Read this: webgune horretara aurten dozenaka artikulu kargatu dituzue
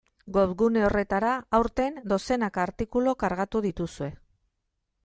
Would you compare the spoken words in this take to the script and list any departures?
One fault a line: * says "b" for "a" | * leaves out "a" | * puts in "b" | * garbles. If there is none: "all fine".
all fine